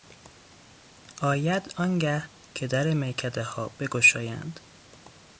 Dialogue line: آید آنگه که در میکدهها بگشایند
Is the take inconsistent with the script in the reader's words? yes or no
no